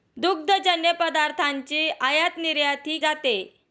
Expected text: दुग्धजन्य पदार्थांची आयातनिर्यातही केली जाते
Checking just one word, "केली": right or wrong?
wrong